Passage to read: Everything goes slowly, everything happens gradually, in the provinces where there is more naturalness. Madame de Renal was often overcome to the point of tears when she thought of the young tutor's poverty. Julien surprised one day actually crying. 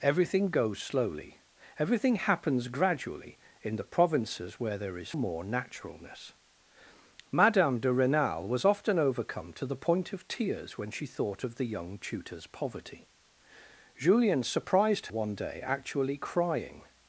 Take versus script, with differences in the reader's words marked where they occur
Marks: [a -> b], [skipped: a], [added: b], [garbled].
Everything goes slowly, everything happens gradually, in the provinces where there is more naturalness. Madame de Renal was often overcome to the point of tears when she thought of the young tutor's poverty. Julien surprised one day actually crying.